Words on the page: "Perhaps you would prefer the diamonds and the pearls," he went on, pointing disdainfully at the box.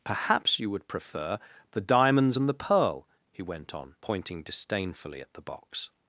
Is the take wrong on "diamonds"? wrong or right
right